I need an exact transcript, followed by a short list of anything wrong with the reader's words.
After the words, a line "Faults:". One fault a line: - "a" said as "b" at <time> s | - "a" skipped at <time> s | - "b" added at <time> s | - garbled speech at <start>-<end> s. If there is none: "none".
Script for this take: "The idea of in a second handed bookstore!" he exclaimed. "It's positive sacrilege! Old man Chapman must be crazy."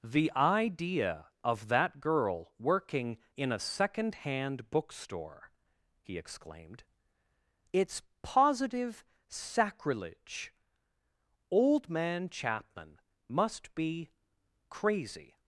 "The idea of that girl working in a second hand bookstore!" he exclaimed. "It's positive sacrilege! Old man Chapman must be crazy."
Faults:
- "that girl working" added at 1.7 s
- "handed" said as "hand" at 4.1 s